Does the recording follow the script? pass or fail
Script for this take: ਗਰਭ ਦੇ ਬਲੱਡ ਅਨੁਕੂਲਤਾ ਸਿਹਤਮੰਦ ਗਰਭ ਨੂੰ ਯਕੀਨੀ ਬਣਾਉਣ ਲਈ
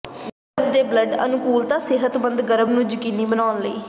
pass